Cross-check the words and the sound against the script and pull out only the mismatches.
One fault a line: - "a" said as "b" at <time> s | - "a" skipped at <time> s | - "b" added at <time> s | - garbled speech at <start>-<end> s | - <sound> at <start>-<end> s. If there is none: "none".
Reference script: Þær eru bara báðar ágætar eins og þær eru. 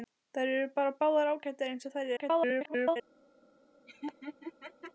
- garbled speech at 2.2-3.0 s
- laugh at 3.9-4.9 s